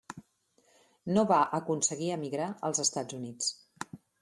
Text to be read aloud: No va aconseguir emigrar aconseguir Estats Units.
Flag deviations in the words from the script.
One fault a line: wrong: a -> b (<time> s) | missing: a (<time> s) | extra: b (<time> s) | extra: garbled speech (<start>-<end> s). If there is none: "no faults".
wrong: aconseguir -> als (2.7 s)